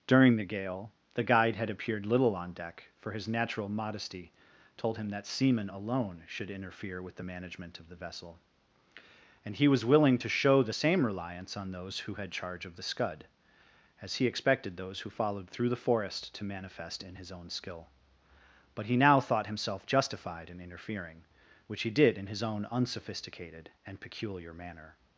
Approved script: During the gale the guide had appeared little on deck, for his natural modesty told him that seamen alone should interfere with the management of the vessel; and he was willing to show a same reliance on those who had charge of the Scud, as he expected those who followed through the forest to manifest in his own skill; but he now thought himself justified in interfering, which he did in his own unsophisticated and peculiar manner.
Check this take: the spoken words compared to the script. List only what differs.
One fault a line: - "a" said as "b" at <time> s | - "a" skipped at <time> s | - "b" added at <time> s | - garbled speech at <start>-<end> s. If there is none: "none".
- "a" said as "the" at 10.6 s